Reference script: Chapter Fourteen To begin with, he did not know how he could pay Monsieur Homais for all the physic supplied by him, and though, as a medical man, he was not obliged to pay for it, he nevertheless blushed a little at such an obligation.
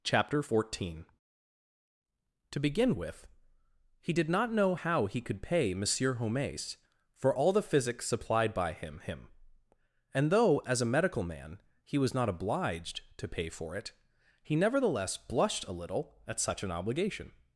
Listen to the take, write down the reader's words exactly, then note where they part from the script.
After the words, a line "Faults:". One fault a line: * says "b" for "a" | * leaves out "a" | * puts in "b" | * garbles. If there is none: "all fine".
Chapter Fourteen To begin with, he did not know how he could pay Monsieur Homais for all the physic supplied by him him, and though, as a medical man, he was not obliged to pay for it, he nevertheless blushed a little at such an obligation.
Faults:
* puts in "him"